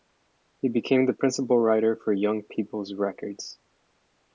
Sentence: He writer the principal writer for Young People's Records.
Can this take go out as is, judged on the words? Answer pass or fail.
fail